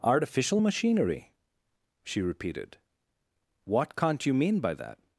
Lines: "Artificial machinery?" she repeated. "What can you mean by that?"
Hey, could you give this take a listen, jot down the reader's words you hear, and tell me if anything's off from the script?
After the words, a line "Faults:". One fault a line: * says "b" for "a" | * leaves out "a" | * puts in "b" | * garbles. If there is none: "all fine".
"Artificial machinery?" she repeated. "What can't you mean by that?"
Faults:
* says "can't" for "can"